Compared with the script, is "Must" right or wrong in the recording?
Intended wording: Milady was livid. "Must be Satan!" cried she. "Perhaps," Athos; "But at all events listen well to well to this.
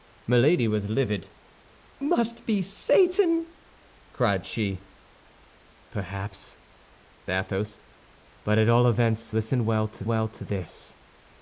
right